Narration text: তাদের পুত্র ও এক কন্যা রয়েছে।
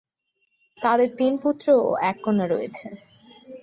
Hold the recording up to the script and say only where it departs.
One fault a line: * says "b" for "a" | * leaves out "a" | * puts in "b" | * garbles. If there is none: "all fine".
* puts in "তিন"